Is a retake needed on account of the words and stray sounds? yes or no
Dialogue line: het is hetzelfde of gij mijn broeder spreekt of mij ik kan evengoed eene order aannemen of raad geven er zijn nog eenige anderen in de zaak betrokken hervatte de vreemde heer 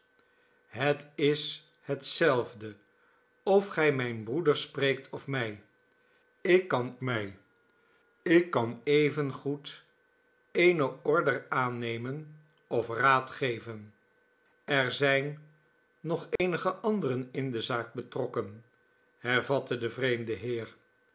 yes